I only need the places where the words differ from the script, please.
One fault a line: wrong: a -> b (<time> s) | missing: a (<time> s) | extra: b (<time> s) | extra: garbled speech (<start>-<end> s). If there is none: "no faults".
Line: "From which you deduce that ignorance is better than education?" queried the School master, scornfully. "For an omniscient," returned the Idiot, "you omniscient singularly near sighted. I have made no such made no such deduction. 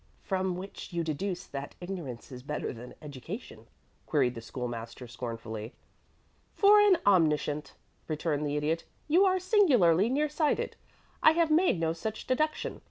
wrong: omniscient -> are (9.3 s)
missing: made no such (12.3 s)